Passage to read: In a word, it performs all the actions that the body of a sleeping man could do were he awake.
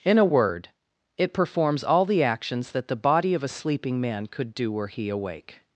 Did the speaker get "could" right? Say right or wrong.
right